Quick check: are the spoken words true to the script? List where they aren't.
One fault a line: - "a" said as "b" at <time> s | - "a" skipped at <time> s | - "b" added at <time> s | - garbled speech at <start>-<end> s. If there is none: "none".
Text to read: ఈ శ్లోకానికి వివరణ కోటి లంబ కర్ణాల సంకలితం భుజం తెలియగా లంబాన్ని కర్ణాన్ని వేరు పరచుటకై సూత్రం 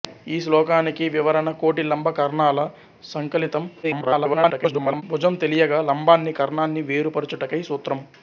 - garbled speech at 3.8-5.0 s